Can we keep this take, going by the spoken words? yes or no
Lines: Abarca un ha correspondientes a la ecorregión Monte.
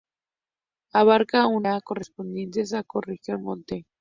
yes